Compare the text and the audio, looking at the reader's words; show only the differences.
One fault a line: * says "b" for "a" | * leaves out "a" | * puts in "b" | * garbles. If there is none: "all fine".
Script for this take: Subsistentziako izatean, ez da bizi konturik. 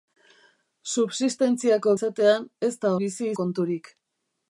all fine